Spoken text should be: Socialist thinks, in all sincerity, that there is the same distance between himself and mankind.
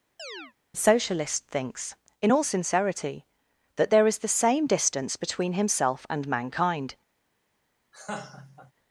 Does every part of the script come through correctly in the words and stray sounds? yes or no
no